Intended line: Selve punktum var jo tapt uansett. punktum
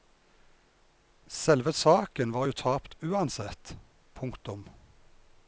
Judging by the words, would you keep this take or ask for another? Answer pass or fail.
fail